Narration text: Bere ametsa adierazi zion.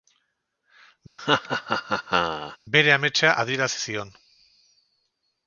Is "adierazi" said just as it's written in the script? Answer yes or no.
yes